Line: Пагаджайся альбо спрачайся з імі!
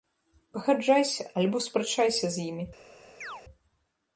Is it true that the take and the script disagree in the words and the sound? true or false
true